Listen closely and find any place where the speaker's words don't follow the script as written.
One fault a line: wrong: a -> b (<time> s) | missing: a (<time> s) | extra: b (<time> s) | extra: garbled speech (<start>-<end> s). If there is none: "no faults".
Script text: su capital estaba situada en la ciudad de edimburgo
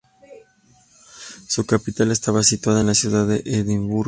no faults